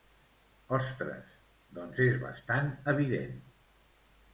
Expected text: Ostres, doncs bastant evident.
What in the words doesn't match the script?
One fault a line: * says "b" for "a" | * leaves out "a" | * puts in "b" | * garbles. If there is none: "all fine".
* puts in "és"